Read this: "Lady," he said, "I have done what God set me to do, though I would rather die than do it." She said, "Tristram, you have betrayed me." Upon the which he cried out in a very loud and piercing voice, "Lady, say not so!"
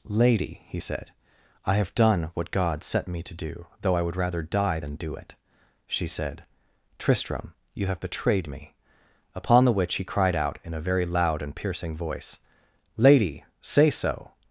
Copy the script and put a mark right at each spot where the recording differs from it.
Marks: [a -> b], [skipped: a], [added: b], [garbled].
"Lady," he said, "I have done what God set me to do, though I would rather die than do it." She said, "Tristram, you have betrayed me." Upon the which he cried out in a very loud and piercing voice, "Lady, say [skipped: not] so!"